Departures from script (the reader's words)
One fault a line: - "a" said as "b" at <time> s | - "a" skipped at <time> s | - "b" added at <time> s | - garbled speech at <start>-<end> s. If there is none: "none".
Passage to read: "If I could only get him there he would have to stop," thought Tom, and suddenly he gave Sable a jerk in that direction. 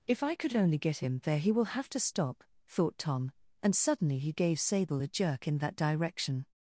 - "would" said as "will" at 1.5 s